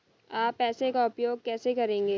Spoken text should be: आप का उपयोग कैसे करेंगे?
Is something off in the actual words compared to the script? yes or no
yes